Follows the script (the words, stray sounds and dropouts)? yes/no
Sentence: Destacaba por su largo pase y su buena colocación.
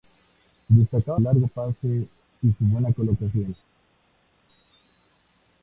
no